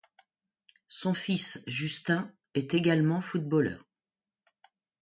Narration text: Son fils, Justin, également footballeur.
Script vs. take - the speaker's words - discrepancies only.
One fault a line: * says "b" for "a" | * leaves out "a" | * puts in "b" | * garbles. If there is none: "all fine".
* puts in "est"